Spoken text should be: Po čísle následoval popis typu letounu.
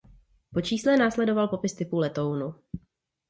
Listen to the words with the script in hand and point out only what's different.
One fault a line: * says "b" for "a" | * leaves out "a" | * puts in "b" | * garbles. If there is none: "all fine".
all fine